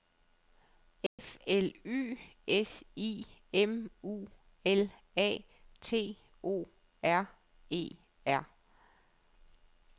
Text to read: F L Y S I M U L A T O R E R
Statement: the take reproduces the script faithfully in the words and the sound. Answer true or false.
false